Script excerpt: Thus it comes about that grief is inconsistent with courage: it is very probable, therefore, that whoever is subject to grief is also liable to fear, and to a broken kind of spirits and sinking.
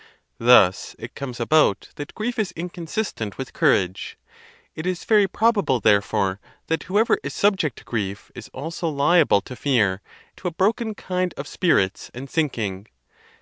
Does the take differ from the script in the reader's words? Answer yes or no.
yes